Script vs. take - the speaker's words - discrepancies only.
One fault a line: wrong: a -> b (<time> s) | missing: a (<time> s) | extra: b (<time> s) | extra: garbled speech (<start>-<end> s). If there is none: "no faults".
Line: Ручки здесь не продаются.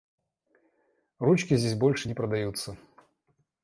extra: больше (1.8 s)